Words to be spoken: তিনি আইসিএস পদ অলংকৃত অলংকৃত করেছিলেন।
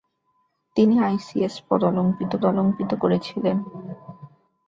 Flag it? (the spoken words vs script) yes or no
no